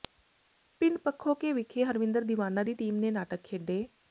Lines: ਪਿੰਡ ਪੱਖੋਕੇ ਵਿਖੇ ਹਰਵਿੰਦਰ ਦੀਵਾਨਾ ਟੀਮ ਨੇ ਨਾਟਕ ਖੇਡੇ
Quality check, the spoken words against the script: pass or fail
fail